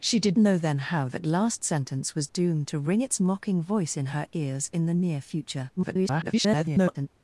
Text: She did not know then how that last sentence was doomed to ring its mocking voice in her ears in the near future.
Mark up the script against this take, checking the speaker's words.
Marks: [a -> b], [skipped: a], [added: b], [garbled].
She did [skipped: not] know then how that last sentence was doomed to ring its mocking voice in her ears in the near future. [garbled]